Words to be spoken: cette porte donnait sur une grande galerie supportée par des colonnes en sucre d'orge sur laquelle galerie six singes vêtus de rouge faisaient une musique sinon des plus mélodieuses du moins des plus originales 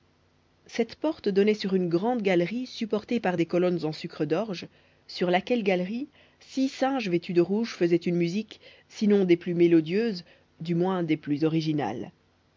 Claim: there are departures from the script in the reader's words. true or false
false